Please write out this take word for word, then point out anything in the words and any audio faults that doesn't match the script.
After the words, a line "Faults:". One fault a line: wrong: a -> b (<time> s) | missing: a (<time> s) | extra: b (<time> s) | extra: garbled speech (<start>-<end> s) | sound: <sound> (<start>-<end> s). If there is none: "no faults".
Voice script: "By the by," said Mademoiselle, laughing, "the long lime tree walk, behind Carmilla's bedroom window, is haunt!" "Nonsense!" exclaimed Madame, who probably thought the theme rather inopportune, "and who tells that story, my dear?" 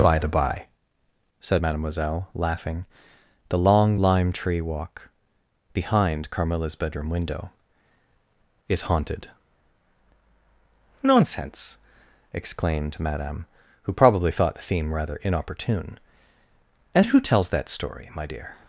"By the by," said Mademoiselle, laughing, "the long lime tree walk, behind Carmilla's bedroom window, is haunted!" "Nonsense!" exclaimed Madame, who probably thought the theme rather inopportune, "and who tells that story, my dear?"
Faults:
wrong: haunt -> haunted (8.9 s)